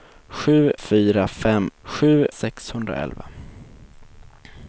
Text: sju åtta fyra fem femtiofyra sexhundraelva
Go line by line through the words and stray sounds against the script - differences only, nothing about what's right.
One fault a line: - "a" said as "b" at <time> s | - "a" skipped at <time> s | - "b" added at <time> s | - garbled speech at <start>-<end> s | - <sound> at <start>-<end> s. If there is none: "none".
- "åtta" skipped at 0.7 s
- "femtiofyra" said as "sju" at 1.8 s